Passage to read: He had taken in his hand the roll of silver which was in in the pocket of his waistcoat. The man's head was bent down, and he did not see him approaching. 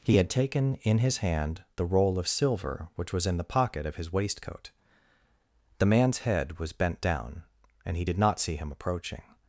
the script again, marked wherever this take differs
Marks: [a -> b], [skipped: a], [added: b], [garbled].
He had taken in his hand the roll of silver which was in [skipped: in] the pocket of his waistcoat. The man's head was bent down, and he did not see him approaching.